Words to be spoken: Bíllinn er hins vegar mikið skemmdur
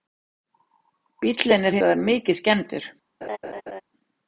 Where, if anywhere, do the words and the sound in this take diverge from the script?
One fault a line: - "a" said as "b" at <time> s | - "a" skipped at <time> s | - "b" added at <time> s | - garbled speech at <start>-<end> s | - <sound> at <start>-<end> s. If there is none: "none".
- "hins" skipped at 1.8 s
- laugh at 3.2-3.8 s